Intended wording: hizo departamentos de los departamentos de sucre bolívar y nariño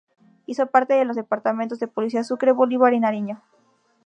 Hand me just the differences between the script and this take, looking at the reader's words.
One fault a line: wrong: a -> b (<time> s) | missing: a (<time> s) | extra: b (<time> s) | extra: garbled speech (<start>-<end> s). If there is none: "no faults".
wrong: departamentos -> parte (0.7 s)
extra: policía (1.9 s)